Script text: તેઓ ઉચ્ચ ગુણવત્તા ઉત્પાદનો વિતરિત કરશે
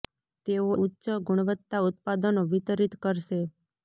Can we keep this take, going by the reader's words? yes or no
yes